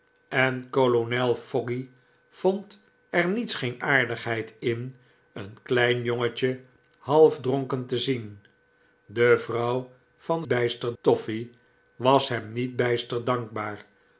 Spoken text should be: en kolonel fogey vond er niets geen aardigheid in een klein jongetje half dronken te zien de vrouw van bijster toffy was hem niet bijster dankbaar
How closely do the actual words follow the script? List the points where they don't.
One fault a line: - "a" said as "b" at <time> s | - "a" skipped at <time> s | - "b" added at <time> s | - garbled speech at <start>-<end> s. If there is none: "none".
none